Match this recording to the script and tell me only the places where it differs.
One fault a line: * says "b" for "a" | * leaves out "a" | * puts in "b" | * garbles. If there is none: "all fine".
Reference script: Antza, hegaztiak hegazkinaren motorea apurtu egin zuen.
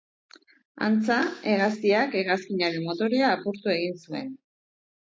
all fine